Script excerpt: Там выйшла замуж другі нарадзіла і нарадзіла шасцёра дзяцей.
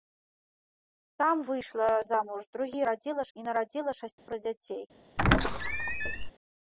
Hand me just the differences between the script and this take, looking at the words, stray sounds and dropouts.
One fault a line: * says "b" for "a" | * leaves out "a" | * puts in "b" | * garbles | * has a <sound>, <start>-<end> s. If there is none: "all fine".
* has a dropout, 4.2-4.3 s
* has a squeak, 5.2-6.3 s